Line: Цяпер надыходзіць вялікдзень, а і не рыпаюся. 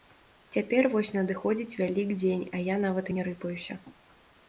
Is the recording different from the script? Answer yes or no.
yes